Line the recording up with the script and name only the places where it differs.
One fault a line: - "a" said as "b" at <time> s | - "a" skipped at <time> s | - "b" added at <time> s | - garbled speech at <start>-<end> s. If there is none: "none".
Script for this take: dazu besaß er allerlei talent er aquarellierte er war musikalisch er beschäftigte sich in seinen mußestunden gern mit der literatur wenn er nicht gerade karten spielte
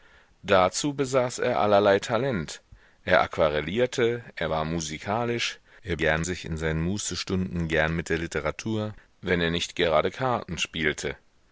- "beschäftigte" said as "gern" at 6.0 s